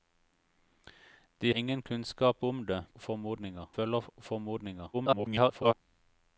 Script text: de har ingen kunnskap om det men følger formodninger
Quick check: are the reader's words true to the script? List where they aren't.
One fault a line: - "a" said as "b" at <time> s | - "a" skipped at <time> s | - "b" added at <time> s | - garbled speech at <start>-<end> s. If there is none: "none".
- "har" skipped at 1.5 s
- "men" said as "formodninger" at 3.0 s
- garbled speech at 4.9-5.7 s